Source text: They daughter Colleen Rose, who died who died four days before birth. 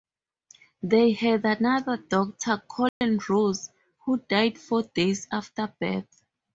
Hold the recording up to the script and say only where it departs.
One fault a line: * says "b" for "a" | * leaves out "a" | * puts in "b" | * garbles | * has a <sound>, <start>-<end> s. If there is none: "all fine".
* puts in "had another"
* has a dropout, 2.9-3.0 s
* leaves out "who died"
* says "after" for "before"